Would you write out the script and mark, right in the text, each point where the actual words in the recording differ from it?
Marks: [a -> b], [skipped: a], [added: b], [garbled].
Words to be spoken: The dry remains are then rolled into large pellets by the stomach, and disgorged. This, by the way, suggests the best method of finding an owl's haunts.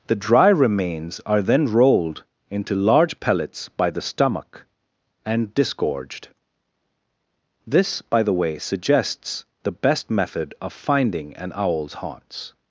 The dry remains are then rolled into large pellets by the stomach, and disgorged. This, by the way, suggests the best method of finding an owl's haunts.